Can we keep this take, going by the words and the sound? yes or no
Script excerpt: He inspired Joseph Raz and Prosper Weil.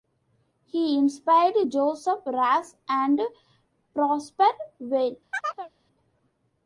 no